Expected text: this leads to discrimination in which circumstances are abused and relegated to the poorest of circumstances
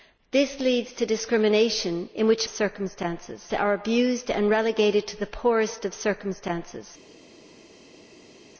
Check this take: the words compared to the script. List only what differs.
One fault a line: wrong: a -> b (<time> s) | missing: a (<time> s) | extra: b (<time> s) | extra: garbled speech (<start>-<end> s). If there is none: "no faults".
no faults